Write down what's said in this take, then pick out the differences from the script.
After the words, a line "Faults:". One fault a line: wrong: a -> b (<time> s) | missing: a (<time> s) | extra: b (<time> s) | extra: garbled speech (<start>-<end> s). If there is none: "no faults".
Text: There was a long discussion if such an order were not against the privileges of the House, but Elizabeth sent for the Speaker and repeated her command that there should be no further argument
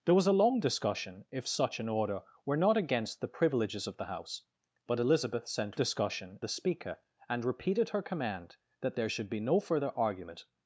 There was a long discussion if such an order were not against the privileges of the House, but Elizabeth sent discussion the Speaker and repeated her command that there should be no further argument
Faults:
wrong: for -> discussion (5.7 s)